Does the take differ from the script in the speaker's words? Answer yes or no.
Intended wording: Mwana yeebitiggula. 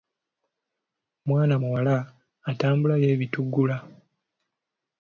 yes